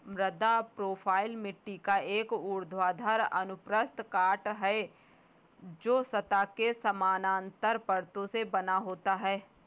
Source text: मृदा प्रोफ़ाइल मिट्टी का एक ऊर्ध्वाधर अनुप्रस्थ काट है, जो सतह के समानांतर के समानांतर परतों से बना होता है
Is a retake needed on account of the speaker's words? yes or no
yes